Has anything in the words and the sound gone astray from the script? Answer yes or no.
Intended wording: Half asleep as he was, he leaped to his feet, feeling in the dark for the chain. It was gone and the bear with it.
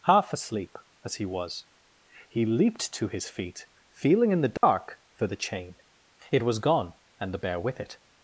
yes